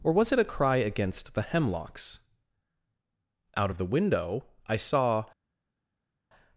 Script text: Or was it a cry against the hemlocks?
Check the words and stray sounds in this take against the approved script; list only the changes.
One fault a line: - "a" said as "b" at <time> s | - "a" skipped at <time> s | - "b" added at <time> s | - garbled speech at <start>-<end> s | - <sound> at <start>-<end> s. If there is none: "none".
- "Out of the window I saw" added at 3.5 s